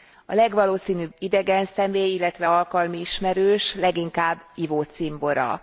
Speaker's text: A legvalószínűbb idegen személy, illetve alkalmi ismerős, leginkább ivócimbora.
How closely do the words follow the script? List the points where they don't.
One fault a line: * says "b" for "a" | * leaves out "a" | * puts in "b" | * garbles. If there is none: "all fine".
all fine